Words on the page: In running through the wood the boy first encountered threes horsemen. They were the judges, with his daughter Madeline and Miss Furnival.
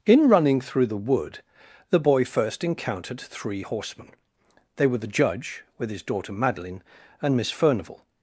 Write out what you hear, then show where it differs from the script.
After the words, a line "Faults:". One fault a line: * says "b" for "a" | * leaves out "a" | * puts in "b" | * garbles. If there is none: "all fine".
In running through the wood the boy first encountered three horsemen. They were the judge, with his daughter Madeline and Miss Furnival.
Faults:
* says "three" for "threes"
* says "judge" for "judges"